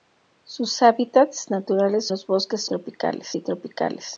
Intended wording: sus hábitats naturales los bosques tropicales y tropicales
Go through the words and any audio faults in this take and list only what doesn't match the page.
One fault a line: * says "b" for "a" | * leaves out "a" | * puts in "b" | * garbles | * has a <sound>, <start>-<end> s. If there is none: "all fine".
all fine